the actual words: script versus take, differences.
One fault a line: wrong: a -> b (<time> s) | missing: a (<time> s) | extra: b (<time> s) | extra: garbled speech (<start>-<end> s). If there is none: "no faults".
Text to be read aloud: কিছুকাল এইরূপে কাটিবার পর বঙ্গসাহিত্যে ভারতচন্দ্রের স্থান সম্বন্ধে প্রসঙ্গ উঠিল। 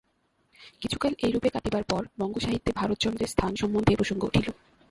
no faults